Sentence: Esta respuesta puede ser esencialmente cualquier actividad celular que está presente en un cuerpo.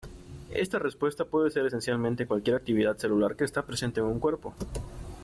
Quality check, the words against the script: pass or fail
pass